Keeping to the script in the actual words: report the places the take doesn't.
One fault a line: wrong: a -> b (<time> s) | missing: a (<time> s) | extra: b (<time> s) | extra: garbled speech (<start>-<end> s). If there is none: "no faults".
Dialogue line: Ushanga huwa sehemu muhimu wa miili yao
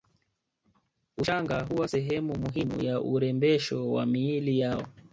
extra: ya urembesho (2.8 s)